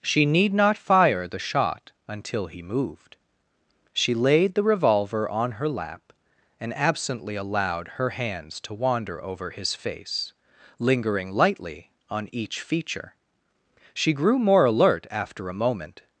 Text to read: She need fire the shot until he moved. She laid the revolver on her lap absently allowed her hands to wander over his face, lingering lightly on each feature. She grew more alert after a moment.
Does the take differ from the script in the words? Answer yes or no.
yes